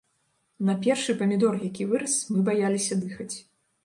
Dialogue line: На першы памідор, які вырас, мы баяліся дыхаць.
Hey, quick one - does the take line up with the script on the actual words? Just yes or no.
yes